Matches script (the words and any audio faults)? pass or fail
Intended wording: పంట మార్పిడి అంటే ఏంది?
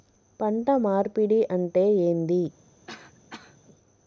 fail